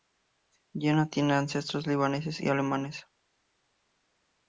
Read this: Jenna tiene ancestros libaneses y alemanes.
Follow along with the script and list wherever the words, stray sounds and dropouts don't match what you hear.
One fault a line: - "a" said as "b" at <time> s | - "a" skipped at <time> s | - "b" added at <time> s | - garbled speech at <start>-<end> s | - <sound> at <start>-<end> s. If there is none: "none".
none